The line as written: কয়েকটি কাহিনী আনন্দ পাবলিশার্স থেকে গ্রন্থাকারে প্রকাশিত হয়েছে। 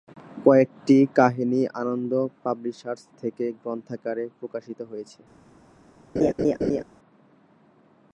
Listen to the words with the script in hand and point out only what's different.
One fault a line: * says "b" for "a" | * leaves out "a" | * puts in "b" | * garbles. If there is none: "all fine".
all fine